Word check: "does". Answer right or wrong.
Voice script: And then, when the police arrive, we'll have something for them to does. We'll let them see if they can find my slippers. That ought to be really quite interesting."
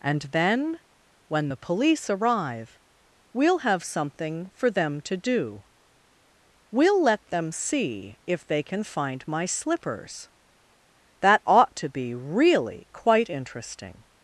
wrong